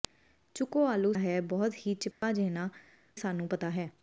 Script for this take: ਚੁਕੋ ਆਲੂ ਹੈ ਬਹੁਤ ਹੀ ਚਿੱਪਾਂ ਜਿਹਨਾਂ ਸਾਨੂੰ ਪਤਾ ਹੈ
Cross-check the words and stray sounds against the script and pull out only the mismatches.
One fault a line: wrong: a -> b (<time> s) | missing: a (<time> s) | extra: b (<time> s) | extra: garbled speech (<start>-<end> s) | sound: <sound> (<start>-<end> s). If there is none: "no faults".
sound: dropout (2.1-2.2 s)